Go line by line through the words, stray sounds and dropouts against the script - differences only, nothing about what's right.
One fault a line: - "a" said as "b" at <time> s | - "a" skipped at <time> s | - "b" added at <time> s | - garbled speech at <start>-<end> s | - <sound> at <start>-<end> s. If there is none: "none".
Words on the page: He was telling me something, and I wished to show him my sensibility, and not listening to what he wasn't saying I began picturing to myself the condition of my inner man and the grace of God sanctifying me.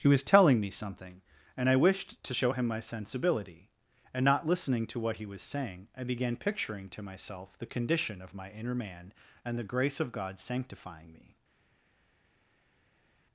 - "wasn't" said as "was" at 5.3 s